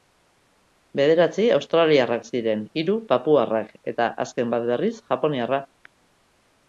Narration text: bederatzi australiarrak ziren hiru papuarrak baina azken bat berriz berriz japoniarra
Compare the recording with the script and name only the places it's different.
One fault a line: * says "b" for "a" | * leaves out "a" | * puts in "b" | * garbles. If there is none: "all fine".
* says "eta" for "baina"
* leaves out "berriz"